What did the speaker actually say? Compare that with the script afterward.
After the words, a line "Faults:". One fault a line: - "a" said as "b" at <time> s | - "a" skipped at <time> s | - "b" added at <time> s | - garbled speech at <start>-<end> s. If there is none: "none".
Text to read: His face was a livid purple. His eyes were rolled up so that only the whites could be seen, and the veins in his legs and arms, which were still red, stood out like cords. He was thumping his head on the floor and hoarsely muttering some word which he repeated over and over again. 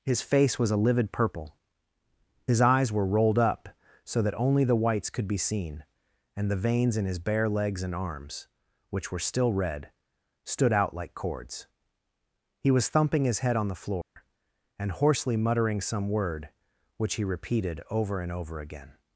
His face was a livid purple. His eyes were rolled up so that only the whites could be seen, and the veins in his bare legs and arms, which were still red, stood out like cords. He was thumping his head on the floor and hoarsely muttering some word which he repeated over and over again.
Faults:
- "bare" added at 7.2 s